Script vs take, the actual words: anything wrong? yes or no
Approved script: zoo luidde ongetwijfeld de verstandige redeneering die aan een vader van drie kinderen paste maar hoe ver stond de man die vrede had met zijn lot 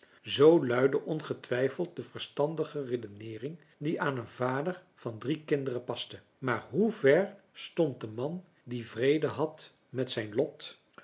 no